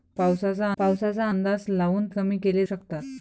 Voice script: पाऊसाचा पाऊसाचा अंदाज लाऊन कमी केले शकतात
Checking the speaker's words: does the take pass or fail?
pass